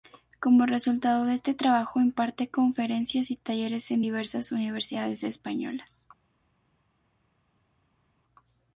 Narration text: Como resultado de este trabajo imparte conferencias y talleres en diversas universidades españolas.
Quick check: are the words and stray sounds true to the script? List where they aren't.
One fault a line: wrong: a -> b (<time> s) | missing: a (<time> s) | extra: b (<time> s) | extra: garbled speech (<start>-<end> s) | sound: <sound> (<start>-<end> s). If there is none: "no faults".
no faults